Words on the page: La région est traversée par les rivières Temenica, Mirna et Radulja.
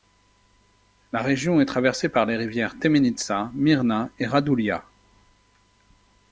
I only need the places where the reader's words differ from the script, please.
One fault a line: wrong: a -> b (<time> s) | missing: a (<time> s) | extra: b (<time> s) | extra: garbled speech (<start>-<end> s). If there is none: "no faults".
no faults